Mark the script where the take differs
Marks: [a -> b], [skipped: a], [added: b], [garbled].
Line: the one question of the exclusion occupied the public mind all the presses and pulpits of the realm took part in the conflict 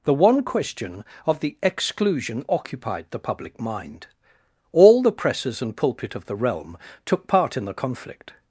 the one question of the exclusion occupied the public mind all the presses and [pulpits -> pulpit] of the realm took part in the conflict